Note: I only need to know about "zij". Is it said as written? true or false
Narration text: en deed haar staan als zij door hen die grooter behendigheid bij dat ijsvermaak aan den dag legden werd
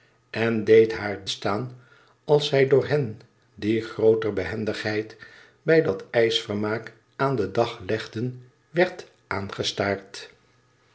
true